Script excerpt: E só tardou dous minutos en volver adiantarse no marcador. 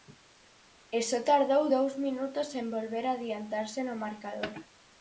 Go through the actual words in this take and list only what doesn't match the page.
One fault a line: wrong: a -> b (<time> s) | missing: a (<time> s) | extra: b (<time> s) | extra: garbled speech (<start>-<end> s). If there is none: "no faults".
no faults